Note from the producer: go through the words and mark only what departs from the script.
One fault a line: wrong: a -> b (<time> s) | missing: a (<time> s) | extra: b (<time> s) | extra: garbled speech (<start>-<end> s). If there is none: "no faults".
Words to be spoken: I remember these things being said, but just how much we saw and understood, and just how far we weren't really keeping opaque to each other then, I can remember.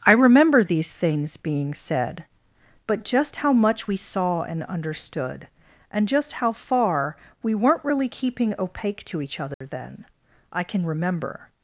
no faults